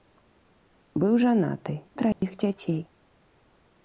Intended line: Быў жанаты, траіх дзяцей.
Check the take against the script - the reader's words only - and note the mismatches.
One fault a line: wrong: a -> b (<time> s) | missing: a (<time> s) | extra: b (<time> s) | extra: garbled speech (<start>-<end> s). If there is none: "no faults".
no faults